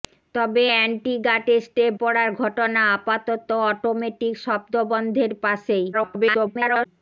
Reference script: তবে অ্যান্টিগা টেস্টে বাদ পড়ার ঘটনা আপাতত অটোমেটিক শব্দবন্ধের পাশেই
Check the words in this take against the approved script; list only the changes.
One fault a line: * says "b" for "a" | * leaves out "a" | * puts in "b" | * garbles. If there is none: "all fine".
* leaves out "বাদ"
* garbles